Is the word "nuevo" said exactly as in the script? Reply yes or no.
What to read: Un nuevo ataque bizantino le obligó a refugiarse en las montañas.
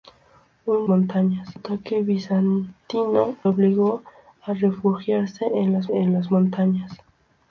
no